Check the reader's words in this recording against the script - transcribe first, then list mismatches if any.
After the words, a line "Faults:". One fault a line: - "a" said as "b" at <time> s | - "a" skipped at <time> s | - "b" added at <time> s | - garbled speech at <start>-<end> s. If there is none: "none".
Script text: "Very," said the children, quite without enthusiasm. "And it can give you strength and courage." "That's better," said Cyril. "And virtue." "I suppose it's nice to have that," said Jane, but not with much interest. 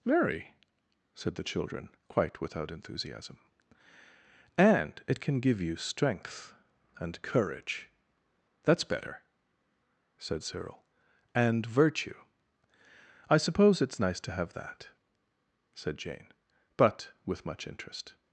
"Very," said the children, quite without enthusiasm. "And it can give you strength and courage." "That's better," said Cyril. "And virtue." "I suppose it's nice to have that," said Jane, but with much interest.
Faults:
- "not" skipped at 17.1 s